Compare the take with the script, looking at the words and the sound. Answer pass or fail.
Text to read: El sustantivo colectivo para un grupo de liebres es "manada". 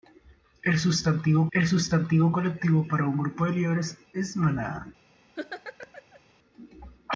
fail